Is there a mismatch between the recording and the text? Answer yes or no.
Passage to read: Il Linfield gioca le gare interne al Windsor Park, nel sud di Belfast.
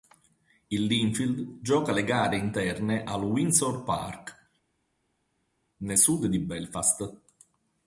no